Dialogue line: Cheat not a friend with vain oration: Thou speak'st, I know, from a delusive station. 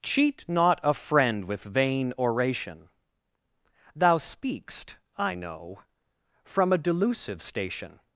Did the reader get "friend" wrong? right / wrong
right